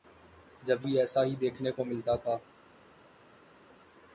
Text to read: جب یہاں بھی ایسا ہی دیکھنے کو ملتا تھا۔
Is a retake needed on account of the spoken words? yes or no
yes